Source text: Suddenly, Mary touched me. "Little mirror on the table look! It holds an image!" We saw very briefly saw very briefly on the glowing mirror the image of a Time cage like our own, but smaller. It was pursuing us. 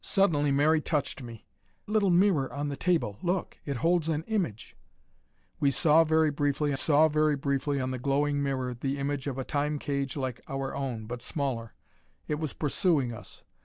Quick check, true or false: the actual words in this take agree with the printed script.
true